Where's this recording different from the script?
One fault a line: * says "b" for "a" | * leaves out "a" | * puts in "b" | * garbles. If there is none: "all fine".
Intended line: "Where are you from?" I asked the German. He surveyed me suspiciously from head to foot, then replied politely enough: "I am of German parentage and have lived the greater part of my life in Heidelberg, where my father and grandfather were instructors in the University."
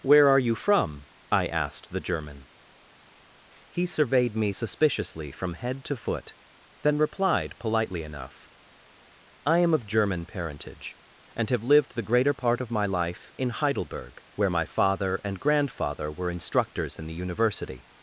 all fine